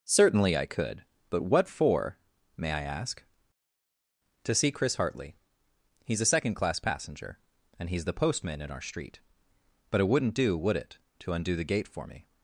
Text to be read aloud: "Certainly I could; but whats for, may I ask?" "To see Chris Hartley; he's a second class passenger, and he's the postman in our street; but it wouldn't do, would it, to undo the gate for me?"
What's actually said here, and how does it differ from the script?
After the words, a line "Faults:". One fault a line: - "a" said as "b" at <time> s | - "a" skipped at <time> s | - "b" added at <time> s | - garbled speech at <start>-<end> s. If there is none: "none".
"Certainly I could; but what for, may I ask?" "To see Chris Hartley; he's a second class passenger, and he's the postman in our street; but it wouldn't do, would it, to undo the gate for me?"
Faults:
- "whats" said as "what" at 1.4 s